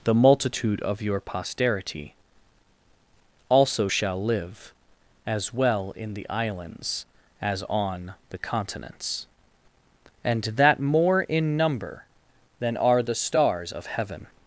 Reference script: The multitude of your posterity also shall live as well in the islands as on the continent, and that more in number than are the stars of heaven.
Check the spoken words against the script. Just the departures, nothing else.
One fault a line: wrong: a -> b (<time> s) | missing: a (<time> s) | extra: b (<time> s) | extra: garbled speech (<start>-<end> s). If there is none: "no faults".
wrong: continent -> continents (8.4 s)